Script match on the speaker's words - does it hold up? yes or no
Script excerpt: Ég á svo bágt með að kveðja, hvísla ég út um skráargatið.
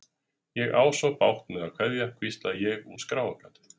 no